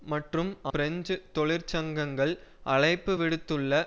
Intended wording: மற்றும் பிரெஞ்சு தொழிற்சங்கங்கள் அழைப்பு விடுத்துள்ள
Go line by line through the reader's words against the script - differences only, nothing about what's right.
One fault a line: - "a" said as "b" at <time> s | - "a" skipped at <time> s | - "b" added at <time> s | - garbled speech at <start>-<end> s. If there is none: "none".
none